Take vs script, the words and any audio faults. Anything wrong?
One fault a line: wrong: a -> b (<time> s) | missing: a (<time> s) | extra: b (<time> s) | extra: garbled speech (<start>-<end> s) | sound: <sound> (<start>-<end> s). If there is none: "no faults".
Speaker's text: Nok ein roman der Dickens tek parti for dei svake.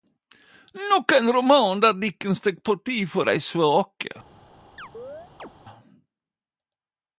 sound: chirp (4.8-5.5 s)